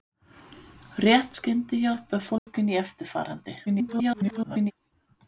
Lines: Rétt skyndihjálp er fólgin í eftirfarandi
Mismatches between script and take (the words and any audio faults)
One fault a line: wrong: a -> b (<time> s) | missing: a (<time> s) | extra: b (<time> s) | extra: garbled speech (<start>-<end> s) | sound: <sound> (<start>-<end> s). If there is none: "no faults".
sound: dropout (2.4-2.5 s)
extra: garbled speech (3.7-4.7 s)